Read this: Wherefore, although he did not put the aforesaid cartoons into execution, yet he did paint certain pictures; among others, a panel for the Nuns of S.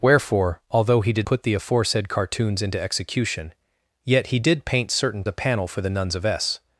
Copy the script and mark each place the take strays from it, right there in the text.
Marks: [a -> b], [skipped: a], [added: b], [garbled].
Wherefore, although he did [skipped: not] put the aforesaid cartoons into execution, yet he did paint certain [skipped: pictures; among others,] a panel for the Nuns of S.